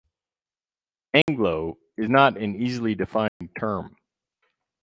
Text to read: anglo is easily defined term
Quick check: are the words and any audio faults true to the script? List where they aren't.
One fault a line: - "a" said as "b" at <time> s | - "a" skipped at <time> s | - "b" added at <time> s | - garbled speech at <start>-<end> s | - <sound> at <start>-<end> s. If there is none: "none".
- dropout at 1.2-1.3 s
- "not an" added at 2.1 s
- dropout at 3.3-3.4 s